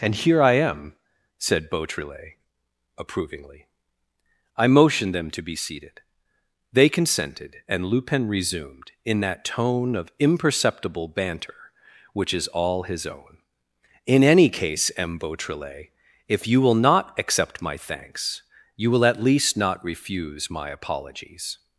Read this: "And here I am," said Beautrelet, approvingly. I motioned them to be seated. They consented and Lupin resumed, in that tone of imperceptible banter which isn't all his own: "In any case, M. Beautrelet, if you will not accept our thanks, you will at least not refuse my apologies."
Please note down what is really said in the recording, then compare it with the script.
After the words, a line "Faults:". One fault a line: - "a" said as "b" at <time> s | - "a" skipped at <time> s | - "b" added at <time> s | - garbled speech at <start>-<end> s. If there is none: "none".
"And here I am," said Beautrelet, approvingly. I motioned them to be seated. They consented and Lupin resumed, in that tone of imperceptible banter which is all his own: "In any case, M. Beautrelet, if you will not accept my thanks, you will at least not refuse my apologies."
Faults:
- "isn't" said as "is" at 12.3 s
- "our" said as "my" at 17.6 s